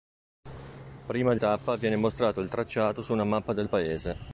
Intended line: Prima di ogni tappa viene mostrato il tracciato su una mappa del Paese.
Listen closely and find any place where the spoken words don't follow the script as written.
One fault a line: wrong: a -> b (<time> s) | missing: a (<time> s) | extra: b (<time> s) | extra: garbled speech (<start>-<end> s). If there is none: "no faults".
missing: ogni (1.4 s)